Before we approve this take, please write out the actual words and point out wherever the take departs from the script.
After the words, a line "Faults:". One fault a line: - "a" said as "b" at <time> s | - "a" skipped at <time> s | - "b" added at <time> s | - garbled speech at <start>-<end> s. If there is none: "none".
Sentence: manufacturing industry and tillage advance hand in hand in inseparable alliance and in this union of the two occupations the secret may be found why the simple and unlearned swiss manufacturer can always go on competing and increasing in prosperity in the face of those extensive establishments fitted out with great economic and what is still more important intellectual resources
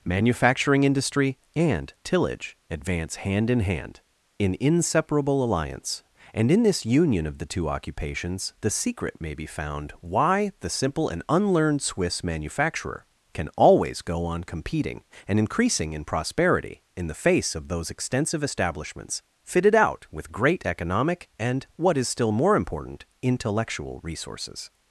manufacturing industry and tillage advance hand in hand in inseparable alliance and in this union of the two occupations the secret may be found why the simple and unlearned swiss manufacturer can always go on competing and increasing in prosperity in the face of those extensive establishments fitted out with great economic and what is still more important intellectual resources
Faults:
none